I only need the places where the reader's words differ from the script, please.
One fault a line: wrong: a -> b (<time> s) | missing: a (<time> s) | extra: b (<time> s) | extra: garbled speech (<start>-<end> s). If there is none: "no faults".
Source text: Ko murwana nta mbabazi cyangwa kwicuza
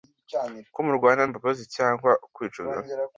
missing: nta (1.2 s)